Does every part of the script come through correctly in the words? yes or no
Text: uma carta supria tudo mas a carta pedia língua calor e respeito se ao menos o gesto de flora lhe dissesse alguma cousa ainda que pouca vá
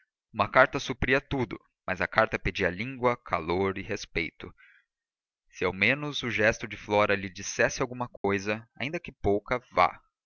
yes